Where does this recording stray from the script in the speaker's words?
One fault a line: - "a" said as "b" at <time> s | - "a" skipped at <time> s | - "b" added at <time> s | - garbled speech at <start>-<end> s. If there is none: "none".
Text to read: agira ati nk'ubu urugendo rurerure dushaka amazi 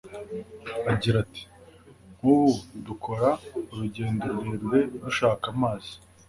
- "dukora" added at 2.9 s